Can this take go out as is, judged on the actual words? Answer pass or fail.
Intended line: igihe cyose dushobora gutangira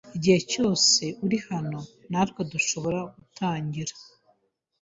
fail